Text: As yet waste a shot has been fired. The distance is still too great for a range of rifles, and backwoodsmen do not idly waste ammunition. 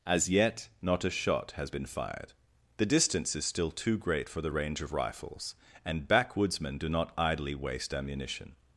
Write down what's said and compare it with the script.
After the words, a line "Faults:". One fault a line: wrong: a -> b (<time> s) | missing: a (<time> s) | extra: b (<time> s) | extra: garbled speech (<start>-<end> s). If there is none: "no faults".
As yet not a shot has been fired. The distance is still too great for the range of rifles, and backwoodsmen do not idly waste ammunition.
Faults:
wrong: waste -> not (0.8 s)
wrong: a -> the (4.4 s)